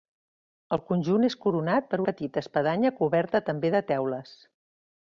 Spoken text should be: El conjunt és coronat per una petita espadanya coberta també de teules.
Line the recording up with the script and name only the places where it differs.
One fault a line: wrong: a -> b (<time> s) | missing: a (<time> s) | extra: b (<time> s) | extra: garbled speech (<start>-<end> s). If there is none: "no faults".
missing: una (2.0 s)